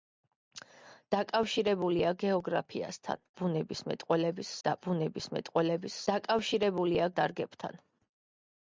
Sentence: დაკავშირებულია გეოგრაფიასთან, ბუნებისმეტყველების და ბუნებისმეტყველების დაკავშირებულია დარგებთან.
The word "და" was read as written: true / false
true